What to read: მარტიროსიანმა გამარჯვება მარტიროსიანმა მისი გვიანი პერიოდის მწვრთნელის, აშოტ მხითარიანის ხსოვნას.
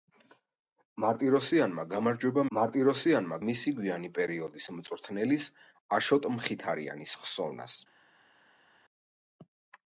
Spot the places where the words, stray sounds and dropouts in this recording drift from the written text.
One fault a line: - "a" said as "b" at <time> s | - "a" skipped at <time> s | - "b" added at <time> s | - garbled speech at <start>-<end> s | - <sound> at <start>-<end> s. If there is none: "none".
none